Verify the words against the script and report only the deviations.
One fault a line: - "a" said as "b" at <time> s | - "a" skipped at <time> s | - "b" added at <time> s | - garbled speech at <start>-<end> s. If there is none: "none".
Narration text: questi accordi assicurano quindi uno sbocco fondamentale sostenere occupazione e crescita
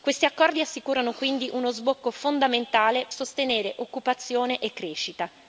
none